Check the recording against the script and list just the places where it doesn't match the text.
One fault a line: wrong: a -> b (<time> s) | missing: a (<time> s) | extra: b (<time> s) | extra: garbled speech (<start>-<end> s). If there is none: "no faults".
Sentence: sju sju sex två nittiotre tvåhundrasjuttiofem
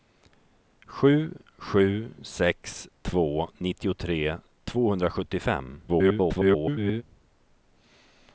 extra: garbled speech (5.9-7.0 s)